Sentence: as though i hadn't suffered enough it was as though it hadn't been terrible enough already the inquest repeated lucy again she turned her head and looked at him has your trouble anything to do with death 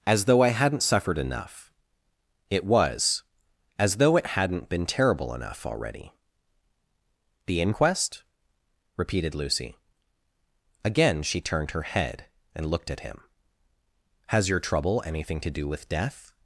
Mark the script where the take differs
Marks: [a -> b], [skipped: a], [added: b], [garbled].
as though i hadn't suffered enough it was as though it hadn't been terrible enough already the inquest repeated lucy again she turned her head and looked at him has your trouble anything to do with death